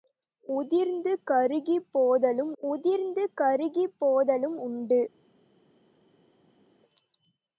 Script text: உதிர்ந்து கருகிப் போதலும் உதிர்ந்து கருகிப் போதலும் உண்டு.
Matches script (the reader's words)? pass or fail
pass